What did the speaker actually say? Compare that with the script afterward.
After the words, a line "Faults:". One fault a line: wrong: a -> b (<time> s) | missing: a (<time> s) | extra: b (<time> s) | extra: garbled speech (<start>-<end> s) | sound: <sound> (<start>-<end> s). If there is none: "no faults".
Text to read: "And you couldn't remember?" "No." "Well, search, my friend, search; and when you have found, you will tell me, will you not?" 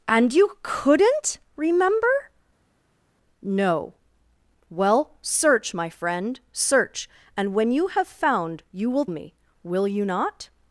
"And you couldn't remember?" "No." "Well, search, my friend, search; and when you have found, you will me, will you not?"
Faults:
missing: tell (9.1 s)